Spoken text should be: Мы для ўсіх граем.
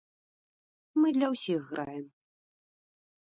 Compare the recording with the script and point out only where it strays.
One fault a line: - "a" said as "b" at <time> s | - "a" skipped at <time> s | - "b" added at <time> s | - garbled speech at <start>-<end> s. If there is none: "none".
none